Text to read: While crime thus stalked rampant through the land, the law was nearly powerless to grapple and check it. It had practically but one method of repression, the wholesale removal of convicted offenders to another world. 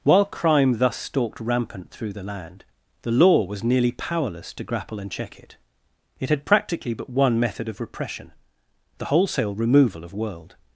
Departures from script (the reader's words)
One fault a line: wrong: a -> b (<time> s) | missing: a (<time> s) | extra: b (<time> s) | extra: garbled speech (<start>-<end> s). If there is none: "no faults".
missing: convicted offenders to another (10.1 s)